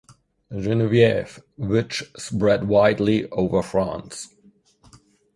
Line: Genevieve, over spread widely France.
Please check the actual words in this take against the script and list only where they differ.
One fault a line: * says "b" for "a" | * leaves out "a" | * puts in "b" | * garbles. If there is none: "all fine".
* says "which" for "over"
* puts in "over"